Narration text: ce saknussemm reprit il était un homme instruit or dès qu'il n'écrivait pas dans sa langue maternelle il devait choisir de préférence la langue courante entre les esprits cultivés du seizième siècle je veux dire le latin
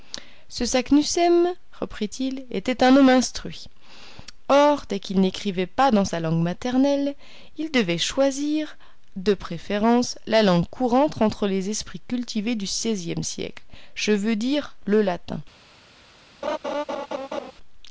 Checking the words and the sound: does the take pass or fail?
fail